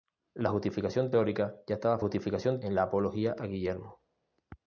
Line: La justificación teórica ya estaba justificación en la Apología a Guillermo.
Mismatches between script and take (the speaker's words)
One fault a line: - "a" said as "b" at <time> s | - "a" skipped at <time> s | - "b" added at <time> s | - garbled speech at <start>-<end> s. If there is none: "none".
none